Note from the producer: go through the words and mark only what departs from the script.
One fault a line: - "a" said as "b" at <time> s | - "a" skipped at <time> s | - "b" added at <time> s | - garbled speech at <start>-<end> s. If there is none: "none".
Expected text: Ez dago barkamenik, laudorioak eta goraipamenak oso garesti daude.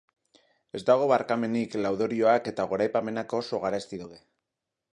none